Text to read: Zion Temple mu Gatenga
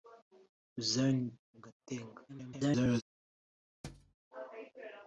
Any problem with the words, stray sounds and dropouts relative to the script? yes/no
yes